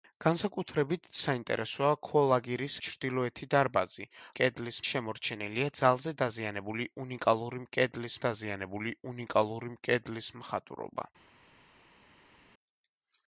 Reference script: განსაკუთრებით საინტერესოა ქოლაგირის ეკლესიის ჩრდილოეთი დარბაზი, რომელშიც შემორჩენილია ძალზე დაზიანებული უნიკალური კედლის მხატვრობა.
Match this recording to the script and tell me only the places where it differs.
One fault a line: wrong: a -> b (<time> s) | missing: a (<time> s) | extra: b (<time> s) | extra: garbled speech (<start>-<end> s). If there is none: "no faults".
missing: ეკლესიის (2.8 s)
wrong: რომელშიც -> კედლის (4.4 s)
extra: დაზიანებული უნიკალური კედლის (8.2 s)